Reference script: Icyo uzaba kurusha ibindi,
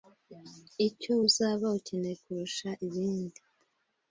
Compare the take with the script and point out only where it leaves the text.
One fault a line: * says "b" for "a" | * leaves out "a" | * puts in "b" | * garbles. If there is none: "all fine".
* puts in "ukeneye"